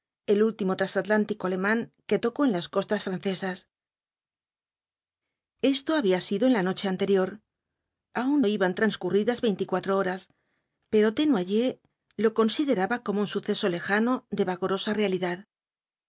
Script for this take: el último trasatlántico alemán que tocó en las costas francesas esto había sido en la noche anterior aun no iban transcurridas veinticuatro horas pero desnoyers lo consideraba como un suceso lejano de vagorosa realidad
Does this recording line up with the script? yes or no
no